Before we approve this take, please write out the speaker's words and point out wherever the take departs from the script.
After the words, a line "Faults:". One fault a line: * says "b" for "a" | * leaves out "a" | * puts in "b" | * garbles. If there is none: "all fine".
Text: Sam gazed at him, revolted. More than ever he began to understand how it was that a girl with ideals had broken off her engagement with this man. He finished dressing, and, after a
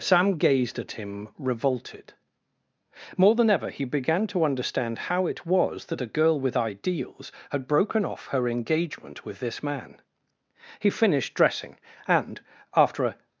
Sam gazed at him, revolted. More than ever he began to understand how it was that a girl with ideals had broken off her engagement with this man. He finished dressing, and, after a
Faults:
all fine